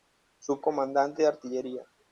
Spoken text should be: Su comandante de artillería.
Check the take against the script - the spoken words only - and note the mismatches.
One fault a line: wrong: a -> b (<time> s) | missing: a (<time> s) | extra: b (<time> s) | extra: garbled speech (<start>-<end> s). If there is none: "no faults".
no faults